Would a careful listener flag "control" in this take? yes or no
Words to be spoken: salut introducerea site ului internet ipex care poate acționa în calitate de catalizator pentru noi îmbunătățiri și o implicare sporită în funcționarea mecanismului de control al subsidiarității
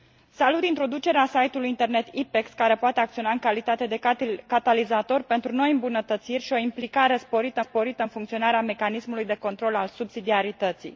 no